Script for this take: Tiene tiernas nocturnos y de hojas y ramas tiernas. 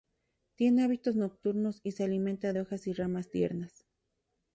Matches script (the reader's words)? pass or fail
fail